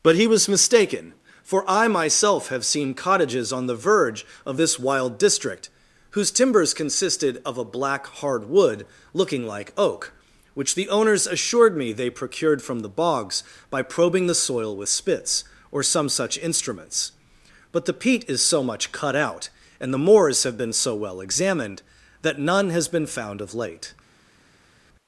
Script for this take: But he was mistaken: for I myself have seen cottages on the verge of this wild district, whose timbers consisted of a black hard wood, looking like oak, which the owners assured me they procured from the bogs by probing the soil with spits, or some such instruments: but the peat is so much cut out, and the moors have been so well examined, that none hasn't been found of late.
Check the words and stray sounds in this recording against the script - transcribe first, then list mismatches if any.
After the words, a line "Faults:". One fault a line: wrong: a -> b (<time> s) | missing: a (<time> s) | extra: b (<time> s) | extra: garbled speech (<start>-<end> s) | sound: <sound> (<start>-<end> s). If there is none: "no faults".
But he was mistaken: for I myself have seen cottages on the verge of this wild district, whose timbers consisted of a black hard wood, looking like oak, which the owners assured me they procured from the bogs by probing the soil with spits, or some such instruments: but the peat is so much cut out, and the moors have been so well examined, that none has been found of late.
Faults:
wrong: hasn't -> has (22.7 s)